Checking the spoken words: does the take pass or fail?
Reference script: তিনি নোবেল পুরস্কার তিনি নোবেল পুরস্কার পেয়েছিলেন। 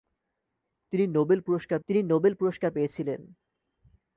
pass